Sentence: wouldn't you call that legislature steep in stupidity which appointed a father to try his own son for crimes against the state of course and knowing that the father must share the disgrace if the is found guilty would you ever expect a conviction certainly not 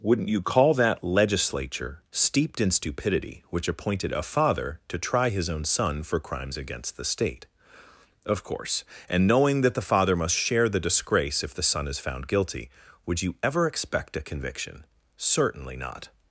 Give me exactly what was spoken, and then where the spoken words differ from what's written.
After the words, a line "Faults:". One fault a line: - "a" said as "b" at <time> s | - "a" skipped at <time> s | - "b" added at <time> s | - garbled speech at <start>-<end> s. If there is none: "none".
wouldn't you call that legislature steeped in stupidity which appointed a father to try his own son for crimes against the state of course and knowing that the father must share the disgrace if the son is found guilty would you ever expect a conviction certainly not
Faults:
- "steep" said as "steeped" at 2.1 s
- "son" added at 11.6 s